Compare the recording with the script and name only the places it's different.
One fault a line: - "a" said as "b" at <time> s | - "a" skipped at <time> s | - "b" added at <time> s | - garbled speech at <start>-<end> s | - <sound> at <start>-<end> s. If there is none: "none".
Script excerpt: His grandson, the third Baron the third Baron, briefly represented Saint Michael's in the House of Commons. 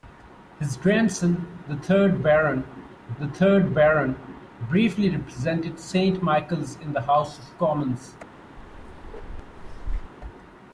- bark at 8.6-10.1 s